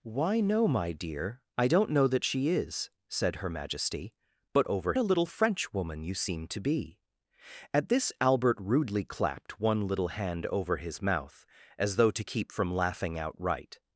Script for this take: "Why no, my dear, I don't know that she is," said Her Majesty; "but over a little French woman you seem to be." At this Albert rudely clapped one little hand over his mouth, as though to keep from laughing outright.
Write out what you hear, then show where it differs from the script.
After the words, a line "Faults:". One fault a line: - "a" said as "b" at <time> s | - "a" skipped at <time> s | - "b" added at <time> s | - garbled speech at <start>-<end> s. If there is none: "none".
"Why no, my dear, I don't know that she is," said Her Majesty; "but over a little French woman you seem to be." At this Albert rudely clapped one little hand over his mouth, as though to keep from laughing outright.
Faults:
none